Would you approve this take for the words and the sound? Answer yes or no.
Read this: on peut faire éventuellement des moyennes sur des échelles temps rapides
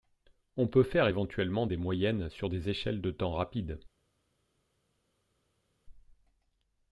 no